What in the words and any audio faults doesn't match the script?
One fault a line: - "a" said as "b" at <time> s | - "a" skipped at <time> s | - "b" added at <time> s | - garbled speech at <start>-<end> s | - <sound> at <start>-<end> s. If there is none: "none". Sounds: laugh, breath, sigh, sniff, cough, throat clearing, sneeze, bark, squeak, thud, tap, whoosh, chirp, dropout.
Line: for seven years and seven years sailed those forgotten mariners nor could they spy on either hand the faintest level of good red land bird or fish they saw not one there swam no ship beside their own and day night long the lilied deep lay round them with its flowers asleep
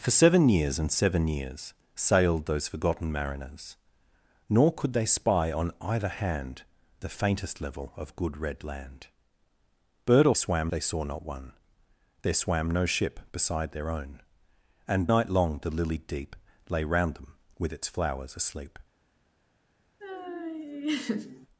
- "fish" said as "swam" at 10.3 s
- "day" skipped at 15.1 s
- laugh at 20.0-21.5 s